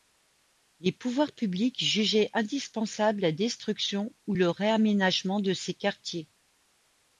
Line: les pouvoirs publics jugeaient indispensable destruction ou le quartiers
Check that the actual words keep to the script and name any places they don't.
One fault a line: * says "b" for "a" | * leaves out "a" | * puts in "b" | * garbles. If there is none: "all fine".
* puts in "la"
* puts in "réaménagement de ces"